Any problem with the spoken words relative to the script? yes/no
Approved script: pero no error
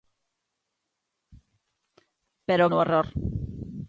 no